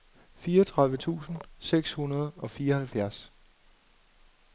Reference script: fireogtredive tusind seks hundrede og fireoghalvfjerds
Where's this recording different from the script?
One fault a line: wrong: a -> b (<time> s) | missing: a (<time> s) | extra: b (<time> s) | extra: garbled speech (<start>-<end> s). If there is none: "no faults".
no faults